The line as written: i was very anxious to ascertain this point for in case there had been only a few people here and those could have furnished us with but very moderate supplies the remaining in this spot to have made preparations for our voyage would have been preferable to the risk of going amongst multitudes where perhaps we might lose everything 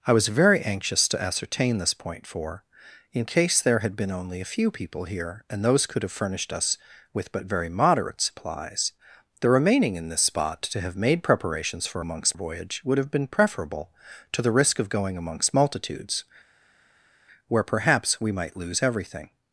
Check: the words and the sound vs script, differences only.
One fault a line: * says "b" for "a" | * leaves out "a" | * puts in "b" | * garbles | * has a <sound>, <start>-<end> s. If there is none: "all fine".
* says "amongst" for "our"